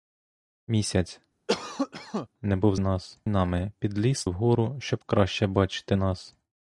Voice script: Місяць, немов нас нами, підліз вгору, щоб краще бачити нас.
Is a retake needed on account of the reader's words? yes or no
no